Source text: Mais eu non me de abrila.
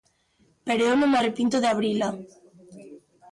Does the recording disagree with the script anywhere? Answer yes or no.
yes